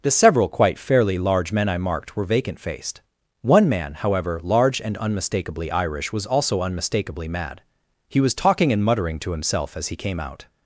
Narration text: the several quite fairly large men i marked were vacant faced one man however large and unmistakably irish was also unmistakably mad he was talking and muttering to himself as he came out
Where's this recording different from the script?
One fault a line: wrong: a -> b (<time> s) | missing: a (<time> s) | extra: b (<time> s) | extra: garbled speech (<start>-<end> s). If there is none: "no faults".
no faults